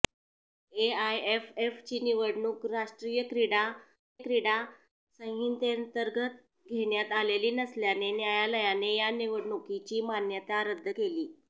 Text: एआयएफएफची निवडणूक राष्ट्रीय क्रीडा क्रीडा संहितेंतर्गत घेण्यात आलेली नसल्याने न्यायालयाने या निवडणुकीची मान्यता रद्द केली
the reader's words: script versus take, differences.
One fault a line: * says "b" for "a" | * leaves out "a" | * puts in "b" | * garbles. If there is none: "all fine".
all fine